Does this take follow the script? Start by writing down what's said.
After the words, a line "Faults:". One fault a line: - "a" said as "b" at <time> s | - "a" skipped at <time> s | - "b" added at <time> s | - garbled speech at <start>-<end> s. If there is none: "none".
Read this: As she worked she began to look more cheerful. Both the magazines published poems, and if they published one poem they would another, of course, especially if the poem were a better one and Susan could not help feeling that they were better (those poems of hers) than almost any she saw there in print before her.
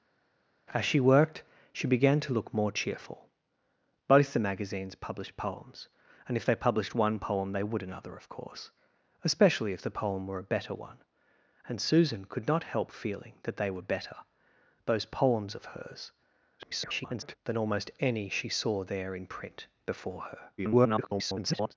As she worked she began to look more cheerful. Both the magazines published poems, and if they published one poem they would another, of course, especially if the poem were a better one and Susan could not help feeling that they were better (those poems of hers) [garbled] than almost any she saw there in print before her. [garbled]
Faults:
- garbled speech at 16.6-17.4 s
- garbled speech at 20.6-21.7 s